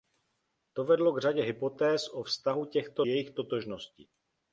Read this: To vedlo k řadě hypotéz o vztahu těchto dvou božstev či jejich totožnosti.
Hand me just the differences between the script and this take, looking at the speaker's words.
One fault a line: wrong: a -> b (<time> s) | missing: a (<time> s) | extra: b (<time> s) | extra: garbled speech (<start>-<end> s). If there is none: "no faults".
missing: dvou božstev či (3.0 s)